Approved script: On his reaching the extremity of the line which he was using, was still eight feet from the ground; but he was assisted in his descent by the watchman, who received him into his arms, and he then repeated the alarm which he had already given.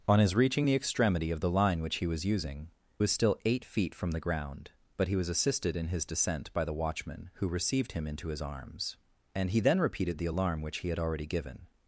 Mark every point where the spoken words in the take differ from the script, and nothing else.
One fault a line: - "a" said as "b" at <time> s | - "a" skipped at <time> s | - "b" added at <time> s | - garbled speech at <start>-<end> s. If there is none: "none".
none